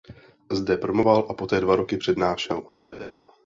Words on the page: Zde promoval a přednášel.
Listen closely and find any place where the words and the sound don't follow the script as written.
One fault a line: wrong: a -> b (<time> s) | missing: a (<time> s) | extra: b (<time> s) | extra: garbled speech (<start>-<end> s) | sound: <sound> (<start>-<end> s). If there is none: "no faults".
extra: poté dva roky (1.3 s)
sound: laugh (2.9-3.1 s)